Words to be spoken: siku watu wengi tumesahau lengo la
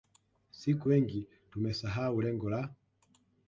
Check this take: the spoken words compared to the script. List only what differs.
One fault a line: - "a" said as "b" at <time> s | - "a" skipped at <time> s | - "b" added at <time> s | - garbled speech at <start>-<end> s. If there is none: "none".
- "watu" skipped at 0.9 s